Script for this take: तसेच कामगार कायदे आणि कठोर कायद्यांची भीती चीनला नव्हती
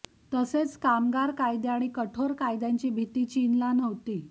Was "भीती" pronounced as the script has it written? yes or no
yes